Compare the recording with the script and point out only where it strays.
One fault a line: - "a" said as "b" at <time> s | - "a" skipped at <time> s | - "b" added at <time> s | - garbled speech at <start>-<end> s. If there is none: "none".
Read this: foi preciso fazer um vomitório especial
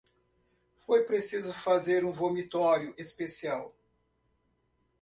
none